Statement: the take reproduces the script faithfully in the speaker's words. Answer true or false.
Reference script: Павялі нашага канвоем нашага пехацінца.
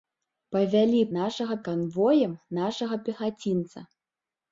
true